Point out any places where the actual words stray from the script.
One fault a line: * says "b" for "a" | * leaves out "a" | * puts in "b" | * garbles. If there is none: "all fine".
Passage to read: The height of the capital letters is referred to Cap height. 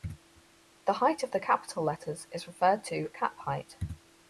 all fine